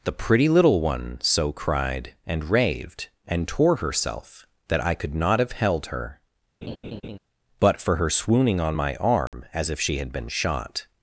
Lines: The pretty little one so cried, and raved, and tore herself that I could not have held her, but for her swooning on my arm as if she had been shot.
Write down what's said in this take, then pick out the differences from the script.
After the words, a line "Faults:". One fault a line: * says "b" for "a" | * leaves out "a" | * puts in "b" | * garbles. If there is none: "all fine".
The pretty little one so cried, and raved, and tore herself that I could not have held her, but for her swooning on my arm as if she had been shot.
Faults:
all fine